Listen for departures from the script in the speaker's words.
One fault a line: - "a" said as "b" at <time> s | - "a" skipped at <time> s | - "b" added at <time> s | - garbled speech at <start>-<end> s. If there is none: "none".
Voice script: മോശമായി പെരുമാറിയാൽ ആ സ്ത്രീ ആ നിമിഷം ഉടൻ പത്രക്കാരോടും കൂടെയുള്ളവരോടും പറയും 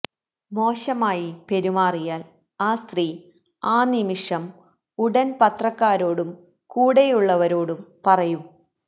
none